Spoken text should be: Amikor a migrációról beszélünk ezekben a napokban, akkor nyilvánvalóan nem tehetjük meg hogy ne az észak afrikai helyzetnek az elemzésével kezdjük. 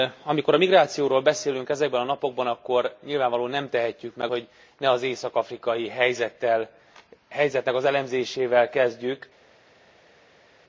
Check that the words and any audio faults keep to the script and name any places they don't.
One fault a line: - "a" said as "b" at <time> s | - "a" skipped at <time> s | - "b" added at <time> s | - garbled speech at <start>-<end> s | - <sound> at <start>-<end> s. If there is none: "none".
none